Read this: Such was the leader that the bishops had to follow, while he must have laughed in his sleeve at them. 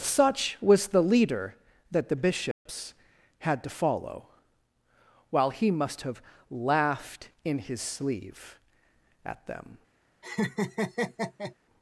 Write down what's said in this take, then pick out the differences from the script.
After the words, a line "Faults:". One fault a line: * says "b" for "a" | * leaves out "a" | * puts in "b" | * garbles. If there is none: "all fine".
Such was the leader that the bishops had to follow, while he must have laughed in his sleeve at them.
Faults:
all fine